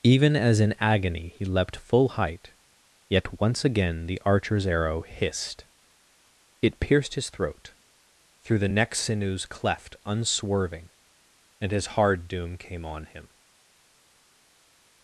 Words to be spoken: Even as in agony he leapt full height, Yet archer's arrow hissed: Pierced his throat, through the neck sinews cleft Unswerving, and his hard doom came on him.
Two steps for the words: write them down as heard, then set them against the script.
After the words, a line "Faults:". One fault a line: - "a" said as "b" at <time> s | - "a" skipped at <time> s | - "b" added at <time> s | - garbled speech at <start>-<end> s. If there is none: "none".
Even as in agony he leapt full height, Yet once again the archer's arrow hissed: It pierced his throat, through the neck sinews cleft Unswerving, and his hard doom came on him.
Faults:
- "once again the" added at 3.4 s
- "It" added at 6.6 s